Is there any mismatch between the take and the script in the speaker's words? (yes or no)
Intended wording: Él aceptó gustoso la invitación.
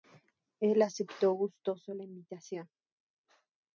no